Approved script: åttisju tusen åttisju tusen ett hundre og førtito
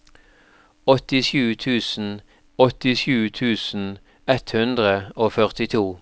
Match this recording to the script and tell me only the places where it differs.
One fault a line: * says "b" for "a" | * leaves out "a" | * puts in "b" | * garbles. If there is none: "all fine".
all fine